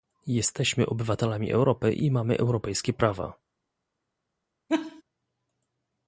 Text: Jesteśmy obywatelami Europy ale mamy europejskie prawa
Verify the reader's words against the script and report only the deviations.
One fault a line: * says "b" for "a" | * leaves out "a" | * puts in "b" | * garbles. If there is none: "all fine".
* says "i" for "ale"